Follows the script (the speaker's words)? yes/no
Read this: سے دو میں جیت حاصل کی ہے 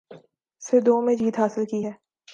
yes